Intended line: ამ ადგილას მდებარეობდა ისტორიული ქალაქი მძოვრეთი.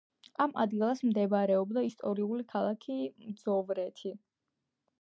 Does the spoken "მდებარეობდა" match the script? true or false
true